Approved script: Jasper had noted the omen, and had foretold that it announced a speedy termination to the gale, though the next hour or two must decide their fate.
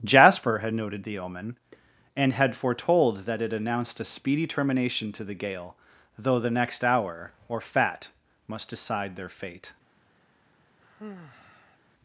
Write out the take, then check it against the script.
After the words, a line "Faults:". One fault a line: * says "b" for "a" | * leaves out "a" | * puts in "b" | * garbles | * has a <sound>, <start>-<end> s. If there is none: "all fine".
Jasper had noted the omen, and had foretold that it announced a speedy termination to the gale, though the next hour or fat must decide their fate.
Faults:
* says "fat" for "two"
* has a sigh, 10.8-11.8 s